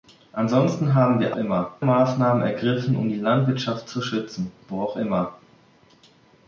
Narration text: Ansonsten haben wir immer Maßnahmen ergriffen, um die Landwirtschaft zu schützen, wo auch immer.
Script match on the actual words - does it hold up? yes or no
yes